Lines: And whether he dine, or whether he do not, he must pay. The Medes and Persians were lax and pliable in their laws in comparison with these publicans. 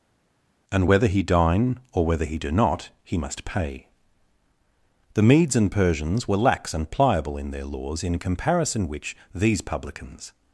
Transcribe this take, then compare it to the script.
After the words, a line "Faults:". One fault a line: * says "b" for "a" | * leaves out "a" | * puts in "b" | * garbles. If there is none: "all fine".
And whether he dine, or whether he do not, he must pay. The Medes and Persians were lax and pliable in their laws in comparison which these publicans.
Faults:
* says "which" for "with"